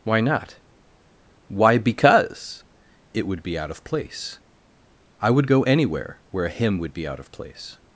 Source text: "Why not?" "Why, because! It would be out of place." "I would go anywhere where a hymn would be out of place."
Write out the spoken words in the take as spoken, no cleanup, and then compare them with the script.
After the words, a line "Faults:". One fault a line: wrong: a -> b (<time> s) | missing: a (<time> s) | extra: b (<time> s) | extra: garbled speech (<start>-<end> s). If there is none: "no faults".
"Why not?" "Why, because! It would be out of place." "I would go anywhere where a hymn would be out of place."
Faults:
no faults